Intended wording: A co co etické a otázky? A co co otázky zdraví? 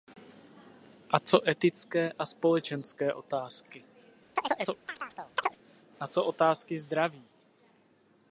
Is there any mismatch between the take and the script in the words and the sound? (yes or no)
yes